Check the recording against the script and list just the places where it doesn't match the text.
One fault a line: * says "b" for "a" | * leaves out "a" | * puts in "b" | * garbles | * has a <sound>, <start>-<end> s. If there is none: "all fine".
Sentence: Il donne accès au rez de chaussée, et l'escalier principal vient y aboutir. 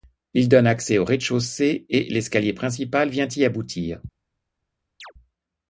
* has a chirp, 5.0-5.1 s